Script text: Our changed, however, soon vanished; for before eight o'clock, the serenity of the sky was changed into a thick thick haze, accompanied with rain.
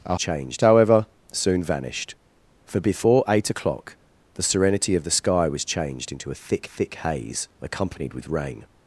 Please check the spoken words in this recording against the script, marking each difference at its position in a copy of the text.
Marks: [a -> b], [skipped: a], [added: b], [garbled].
Our changed, however, soon vanished; for before eight o'clock, the serenity of the sky was changed into a thick thick haze, accompanied with rain.